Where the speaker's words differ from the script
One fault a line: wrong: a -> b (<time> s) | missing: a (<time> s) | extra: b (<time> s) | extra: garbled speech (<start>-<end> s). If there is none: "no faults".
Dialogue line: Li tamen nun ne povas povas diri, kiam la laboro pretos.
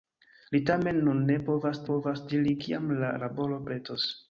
no faults